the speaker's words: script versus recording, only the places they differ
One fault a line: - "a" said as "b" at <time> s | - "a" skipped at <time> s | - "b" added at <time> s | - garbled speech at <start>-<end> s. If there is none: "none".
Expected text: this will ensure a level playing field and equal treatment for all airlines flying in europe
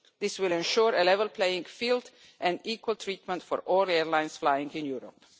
none